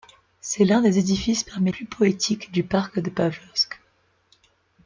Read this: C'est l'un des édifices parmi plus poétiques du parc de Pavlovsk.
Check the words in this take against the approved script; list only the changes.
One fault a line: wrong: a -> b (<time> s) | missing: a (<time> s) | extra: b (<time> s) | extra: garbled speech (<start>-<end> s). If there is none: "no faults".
no faults